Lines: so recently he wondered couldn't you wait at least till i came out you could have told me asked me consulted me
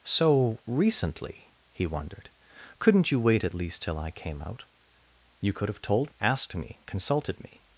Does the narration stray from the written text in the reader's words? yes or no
yes